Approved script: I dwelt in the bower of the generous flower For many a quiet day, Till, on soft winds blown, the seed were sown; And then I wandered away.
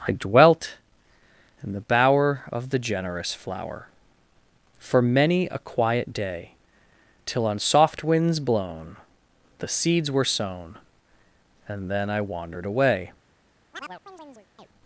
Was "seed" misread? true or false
true